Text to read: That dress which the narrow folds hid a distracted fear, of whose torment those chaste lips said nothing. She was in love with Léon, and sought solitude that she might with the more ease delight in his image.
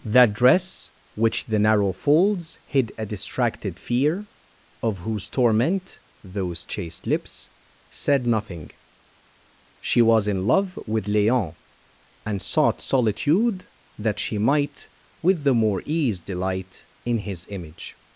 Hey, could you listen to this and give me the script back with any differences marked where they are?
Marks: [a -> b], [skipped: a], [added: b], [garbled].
That dress which the narrow folds hid a distracted fear, of whose torment those chaste lips said nothing. She was in love with Léon, and sought solitude that she might with the more ease delight in his image.